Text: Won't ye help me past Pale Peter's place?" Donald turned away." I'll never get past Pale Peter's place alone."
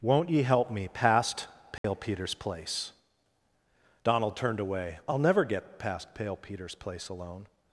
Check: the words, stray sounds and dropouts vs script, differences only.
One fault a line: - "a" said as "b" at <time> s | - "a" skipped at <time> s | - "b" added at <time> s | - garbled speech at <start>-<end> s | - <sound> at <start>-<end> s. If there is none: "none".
- dropout at 1.8-1.8 s